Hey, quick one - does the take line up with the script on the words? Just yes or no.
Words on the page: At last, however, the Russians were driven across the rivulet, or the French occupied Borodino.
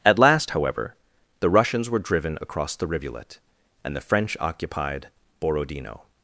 no